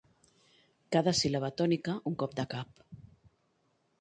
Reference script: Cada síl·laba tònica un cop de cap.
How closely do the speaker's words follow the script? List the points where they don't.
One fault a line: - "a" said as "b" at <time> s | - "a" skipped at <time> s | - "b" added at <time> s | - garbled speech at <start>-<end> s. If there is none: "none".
none